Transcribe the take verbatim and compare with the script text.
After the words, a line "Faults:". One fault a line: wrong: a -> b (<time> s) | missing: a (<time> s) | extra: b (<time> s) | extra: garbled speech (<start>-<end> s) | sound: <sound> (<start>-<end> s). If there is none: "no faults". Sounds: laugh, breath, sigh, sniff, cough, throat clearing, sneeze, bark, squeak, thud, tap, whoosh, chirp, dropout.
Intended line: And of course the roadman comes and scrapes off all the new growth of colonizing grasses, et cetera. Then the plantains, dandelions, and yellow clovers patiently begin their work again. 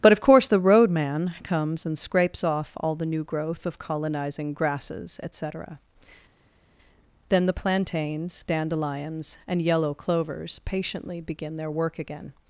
But of course the roadman comes and scrapes off all the new growth of colonizing grasses, et cetera. Then the plantains, dandelions, and yellow clovers patiently begin their work again.
Faults:
wrong: And -> But (0.0 s)